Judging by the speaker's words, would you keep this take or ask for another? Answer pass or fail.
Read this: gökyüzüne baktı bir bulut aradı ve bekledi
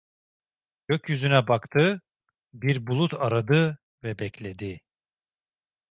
pass